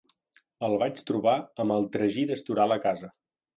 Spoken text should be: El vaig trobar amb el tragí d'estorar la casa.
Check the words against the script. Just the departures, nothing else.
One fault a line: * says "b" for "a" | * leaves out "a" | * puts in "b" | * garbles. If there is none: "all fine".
all fine